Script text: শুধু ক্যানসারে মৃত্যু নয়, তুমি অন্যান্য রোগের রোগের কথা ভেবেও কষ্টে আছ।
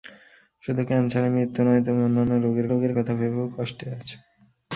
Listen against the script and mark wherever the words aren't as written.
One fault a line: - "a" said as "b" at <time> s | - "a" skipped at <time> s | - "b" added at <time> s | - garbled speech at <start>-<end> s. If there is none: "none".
none